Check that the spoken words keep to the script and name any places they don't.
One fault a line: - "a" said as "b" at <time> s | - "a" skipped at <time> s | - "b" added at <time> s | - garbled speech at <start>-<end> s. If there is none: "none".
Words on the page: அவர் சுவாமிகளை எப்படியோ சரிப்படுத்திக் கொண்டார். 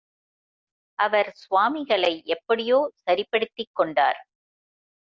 none